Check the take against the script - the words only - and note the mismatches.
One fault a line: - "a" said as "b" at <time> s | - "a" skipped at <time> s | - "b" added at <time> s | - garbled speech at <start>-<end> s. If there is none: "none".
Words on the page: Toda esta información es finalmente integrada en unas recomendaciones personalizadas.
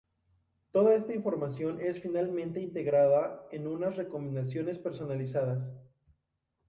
none